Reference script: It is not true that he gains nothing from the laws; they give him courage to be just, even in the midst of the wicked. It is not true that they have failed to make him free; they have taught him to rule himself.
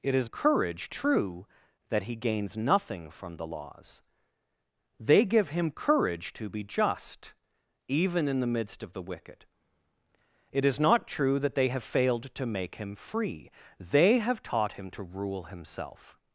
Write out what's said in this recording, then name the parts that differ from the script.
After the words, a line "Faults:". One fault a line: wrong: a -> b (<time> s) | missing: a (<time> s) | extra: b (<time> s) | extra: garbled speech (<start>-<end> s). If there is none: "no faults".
It is courage true that he gains nothing from the laws; they give him courage to be just, even in the midst of the wicked. It is not true that they have failed to make him free; they have taught him to rule himself.
Faults:
wrong: not -> courage (0.3 s)